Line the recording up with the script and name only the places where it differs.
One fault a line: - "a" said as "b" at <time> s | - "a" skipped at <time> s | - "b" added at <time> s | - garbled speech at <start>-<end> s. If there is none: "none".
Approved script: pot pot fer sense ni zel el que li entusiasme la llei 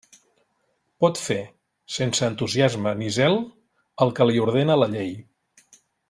- "pot" skipped at 1.2 s
- "entusiasme" added at 2.3 s
- "entusiasme" said as "ordena" at 4.5 s